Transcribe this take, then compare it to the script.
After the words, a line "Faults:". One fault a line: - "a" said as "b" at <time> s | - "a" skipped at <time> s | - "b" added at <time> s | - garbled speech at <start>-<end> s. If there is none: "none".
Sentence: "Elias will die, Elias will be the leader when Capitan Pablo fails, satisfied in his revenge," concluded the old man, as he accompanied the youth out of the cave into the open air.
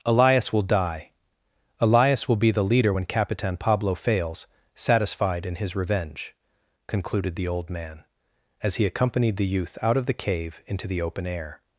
"Elias will die, Elias will be the leader when Capitan Pablo fails, satisfied in his revenge," concluded the old man, as he accompanied the youth out of the cave into the open air.
Faults:
none